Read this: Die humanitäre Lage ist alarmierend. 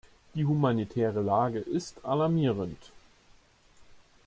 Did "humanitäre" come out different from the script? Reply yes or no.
no